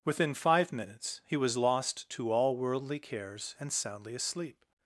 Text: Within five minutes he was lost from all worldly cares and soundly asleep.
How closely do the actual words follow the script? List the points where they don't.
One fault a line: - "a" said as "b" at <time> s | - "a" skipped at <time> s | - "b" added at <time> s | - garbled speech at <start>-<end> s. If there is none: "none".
- "from" said as "to" at 2.1 s